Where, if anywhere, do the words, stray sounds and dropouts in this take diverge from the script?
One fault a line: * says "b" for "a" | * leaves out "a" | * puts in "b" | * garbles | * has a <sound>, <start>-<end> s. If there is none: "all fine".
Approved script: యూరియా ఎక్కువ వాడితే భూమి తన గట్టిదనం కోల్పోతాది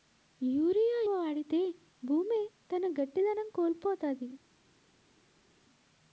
* leaves out "ఎక్కువ"